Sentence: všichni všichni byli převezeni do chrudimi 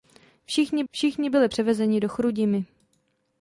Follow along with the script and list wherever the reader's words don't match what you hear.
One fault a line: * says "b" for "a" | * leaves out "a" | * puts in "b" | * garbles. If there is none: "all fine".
all fine